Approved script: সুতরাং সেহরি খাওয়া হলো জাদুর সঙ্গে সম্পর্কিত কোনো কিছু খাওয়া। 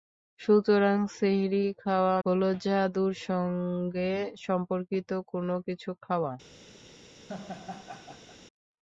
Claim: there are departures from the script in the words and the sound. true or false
true